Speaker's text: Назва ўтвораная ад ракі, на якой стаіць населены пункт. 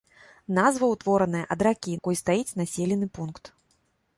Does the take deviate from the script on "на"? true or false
true